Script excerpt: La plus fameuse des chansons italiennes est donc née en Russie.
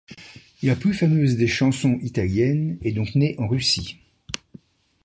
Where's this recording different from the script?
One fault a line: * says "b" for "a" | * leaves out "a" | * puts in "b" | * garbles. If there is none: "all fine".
all fine